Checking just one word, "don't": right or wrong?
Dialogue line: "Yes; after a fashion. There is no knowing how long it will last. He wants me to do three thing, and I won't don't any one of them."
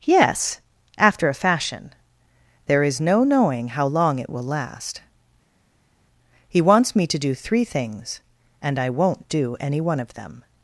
wrong